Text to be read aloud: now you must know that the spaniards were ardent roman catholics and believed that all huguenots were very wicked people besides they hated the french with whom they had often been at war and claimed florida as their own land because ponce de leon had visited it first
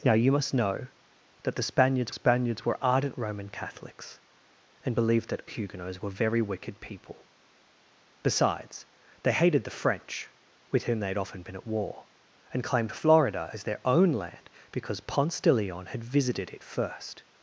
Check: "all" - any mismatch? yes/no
yes